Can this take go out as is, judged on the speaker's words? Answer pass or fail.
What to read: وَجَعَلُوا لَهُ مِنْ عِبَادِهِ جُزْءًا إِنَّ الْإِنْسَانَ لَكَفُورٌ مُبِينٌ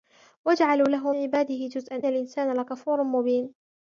fail